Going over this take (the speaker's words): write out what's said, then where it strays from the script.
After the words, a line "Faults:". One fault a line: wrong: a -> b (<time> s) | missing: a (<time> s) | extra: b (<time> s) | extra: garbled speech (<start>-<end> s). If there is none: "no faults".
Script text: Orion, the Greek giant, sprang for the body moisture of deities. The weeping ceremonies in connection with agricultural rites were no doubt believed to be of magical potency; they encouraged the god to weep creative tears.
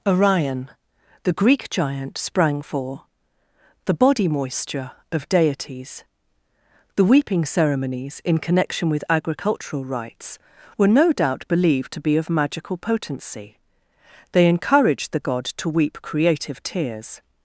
Orion, the Greek giant, sprang for the body moisture of deities. The weeping ceremonies in connection with agricultural rites were no doubt believed to be of magical potency; they encouraged the god to weep creative tears.
Faults:
no faults